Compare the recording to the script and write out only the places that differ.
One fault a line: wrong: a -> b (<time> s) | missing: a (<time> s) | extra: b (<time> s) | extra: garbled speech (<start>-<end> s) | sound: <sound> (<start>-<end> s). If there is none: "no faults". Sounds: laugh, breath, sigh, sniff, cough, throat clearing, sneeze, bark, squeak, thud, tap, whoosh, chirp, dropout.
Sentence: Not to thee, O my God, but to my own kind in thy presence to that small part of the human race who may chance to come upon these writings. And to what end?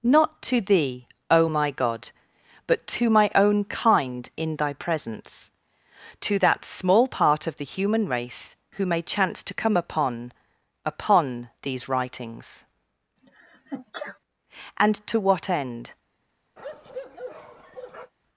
extra: upon (10.8 s)
sound: sneeze (13.2-14.2 s)
sound: bark (16.6-18.1 s)